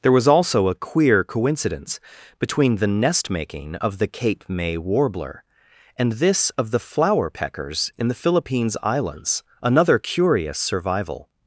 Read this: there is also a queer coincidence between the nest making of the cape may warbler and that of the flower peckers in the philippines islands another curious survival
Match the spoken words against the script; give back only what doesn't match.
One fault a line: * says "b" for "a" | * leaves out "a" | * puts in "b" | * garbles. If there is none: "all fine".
* says "was" for "is"
* says "this" for "that"